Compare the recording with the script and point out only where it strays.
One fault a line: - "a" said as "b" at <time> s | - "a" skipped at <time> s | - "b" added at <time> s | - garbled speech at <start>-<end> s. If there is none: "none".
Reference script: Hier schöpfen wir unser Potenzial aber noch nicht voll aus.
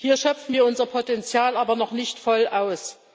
none